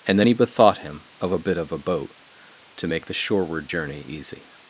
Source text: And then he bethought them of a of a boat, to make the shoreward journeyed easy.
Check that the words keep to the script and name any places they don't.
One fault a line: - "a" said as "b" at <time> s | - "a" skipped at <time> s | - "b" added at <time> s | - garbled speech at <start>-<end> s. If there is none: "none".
- "them" said as "him" at 0.8 s
- "bit" added at 1.4 s
- "journeyed" said as "journey" at 3.7 s